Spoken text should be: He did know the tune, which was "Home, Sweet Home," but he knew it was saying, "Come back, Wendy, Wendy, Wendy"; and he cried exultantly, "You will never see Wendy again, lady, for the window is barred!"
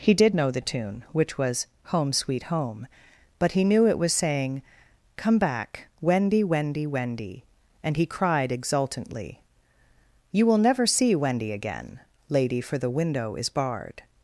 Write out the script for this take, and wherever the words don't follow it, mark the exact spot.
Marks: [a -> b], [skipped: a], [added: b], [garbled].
He did know the tune, which was "Home, Sweet Home," but he knew it was saying, "Come back, Wendy, Wendy, Wendy"; and he cried exultantly, "You will never see Wendy again, lady, for the window is barred!"